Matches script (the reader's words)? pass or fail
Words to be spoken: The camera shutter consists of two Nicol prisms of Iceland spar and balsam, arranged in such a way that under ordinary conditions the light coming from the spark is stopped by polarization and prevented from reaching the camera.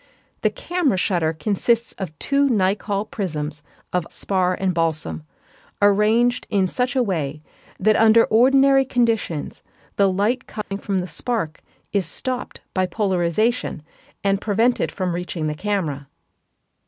fail